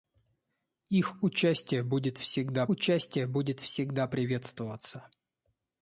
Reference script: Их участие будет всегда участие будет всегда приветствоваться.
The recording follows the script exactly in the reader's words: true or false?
true